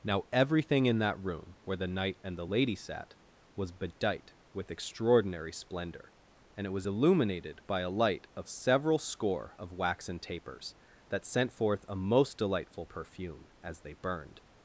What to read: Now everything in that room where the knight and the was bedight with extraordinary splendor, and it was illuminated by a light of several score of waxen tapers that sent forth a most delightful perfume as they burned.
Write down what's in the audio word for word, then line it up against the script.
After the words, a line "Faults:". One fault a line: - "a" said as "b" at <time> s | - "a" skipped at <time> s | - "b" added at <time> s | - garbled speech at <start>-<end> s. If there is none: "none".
Now everything in that room where the knight and the lady sat was bedight with extraordinary splendor, and it was illuminated by a light of several score of waxen tapers that sent forth a most delightful perfume as they burned.
Faults:
- "lady sat" added at 2.4 s